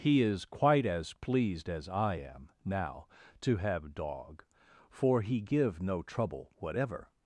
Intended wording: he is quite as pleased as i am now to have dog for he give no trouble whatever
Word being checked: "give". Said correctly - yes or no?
yes